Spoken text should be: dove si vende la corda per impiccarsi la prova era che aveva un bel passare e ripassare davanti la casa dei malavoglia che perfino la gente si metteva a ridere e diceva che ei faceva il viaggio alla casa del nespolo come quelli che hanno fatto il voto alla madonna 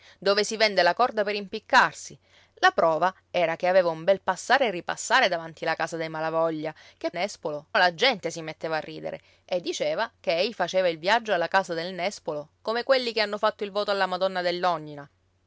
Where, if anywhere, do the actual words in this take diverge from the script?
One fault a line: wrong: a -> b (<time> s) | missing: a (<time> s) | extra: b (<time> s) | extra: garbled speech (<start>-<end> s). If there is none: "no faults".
wrong: perfino -> nespolo (7.1 s)